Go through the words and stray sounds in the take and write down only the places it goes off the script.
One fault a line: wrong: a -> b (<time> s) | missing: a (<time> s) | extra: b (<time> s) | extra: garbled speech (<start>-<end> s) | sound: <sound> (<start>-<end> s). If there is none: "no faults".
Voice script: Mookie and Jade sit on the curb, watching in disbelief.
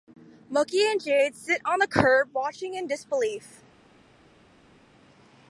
no faults